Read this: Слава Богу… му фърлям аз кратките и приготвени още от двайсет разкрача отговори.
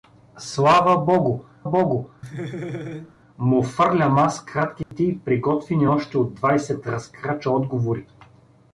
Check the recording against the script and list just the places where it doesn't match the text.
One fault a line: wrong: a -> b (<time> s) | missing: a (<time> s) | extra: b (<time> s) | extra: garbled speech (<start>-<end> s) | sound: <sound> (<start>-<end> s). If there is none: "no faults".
extra: Богу (1.6 s)
sound: laugh (2.2-3.1 s)
sound: dropout (4.8-4.9 s)